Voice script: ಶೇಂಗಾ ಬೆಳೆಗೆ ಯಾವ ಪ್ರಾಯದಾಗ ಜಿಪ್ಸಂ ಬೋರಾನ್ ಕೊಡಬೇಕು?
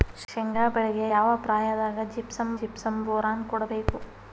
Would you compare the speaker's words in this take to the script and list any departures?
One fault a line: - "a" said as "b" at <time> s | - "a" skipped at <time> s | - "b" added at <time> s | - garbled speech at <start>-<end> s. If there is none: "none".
- "ಜಿಪ್ಸಂ" added at 2.6 s